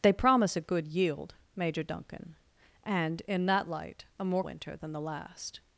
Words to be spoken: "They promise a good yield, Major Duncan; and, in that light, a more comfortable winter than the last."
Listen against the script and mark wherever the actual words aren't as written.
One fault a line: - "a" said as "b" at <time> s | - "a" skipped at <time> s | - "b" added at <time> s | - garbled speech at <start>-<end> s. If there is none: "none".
- "comfortable" skipped at 4.4 s